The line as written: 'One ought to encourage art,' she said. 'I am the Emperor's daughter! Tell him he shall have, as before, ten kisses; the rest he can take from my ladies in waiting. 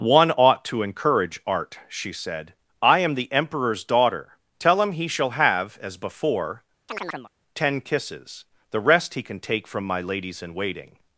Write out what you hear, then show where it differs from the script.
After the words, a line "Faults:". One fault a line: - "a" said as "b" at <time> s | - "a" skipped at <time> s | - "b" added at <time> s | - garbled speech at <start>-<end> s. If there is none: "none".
'One ought to encourage art,' she said. 'I am the Emperor's daughter! Tell him he shall have, as before, ten kisses; the rest he can take from my ladies in waiting.
Faults:
none